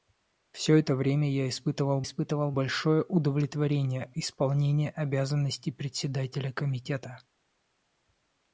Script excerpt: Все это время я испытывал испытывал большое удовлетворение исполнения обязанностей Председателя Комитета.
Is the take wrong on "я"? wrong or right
right